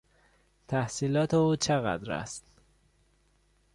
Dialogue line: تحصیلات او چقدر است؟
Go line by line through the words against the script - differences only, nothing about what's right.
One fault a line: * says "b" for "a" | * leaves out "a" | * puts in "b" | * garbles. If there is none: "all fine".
all fine